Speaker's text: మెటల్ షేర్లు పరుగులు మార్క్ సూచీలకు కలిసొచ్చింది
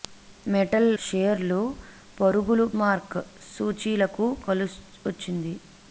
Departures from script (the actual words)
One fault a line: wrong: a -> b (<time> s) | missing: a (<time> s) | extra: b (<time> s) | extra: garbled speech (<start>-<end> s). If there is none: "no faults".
no faults